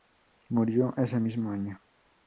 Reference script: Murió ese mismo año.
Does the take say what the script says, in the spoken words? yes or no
yes